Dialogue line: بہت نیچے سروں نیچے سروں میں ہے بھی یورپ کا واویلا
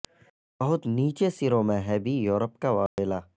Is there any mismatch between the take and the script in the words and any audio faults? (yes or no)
yes